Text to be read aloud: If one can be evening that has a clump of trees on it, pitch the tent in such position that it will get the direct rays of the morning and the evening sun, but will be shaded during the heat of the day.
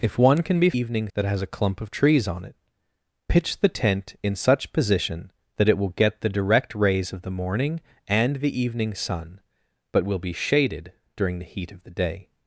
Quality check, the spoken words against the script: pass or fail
pass